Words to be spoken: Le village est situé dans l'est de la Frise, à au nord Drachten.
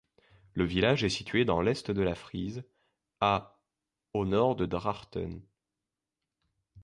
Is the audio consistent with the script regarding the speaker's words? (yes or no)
no